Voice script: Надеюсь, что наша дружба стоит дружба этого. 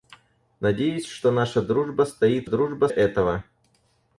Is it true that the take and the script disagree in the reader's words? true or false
false